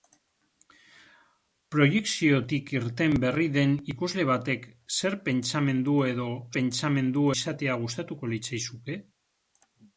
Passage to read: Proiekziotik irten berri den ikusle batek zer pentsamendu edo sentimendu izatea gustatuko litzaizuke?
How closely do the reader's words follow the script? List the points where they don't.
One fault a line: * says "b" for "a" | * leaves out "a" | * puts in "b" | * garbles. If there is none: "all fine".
* says "pentsamendu" for "sentimendu"